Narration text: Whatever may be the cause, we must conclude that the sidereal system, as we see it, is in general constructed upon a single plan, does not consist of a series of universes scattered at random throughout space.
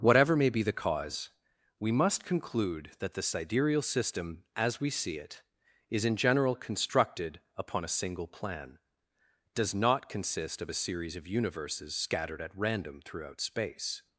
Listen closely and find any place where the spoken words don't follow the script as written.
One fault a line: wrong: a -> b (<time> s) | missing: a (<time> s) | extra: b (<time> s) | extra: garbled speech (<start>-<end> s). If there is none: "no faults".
no faults